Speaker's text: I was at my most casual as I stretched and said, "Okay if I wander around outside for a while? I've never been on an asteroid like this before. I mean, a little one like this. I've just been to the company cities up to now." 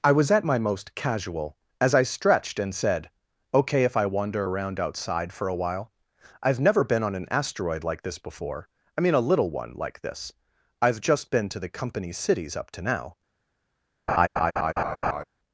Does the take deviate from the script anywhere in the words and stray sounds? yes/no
yes